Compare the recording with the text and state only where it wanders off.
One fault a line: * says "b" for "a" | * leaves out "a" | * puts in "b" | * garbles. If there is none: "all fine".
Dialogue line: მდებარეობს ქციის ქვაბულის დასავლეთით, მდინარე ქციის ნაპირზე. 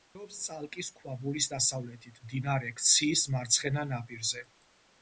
* says "წალკის" for "ქციის"
* puts in "მარცხენა"